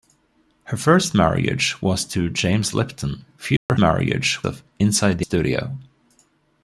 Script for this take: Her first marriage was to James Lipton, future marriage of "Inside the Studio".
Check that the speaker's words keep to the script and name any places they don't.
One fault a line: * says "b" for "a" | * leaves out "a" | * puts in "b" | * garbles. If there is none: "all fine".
all fine